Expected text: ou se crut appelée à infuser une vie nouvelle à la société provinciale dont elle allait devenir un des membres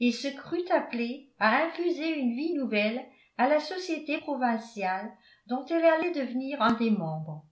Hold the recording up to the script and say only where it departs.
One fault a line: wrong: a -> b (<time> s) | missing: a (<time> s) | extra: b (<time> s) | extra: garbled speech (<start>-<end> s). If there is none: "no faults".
wrong: ou -> et (0.0 s)